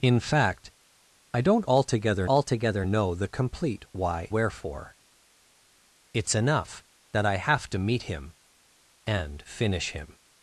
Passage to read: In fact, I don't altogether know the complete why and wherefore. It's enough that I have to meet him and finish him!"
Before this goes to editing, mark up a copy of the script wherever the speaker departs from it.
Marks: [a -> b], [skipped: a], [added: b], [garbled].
In fact, I don't altogether [added: altogether] know the complete why [skipped: and] wherefore. It's enough that I have to meet him and finish him!"